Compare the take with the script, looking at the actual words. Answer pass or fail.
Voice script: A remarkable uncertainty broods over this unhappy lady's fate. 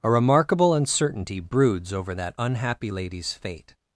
fail